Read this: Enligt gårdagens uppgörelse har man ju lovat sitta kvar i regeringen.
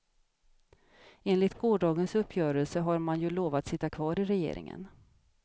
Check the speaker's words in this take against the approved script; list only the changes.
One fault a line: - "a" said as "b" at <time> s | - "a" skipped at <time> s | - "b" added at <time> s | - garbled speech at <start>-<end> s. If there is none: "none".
none